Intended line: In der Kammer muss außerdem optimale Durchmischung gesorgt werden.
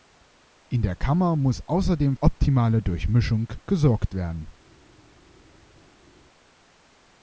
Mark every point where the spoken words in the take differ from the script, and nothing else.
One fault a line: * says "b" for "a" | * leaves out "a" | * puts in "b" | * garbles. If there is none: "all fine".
all fine